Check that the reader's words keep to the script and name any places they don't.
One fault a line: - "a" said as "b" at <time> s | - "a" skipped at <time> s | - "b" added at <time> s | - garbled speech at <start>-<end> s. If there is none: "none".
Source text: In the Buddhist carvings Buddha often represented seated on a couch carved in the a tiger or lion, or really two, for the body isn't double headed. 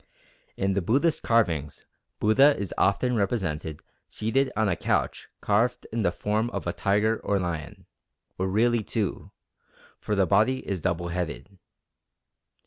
- "is" added at 2.6 s
- "form of" added at 6.1 s
- "isn't" said as "is" at 10.7 s